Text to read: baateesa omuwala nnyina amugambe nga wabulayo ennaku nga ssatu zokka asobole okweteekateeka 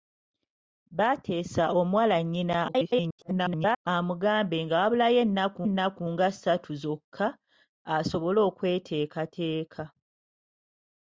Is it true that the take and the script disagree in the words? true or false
true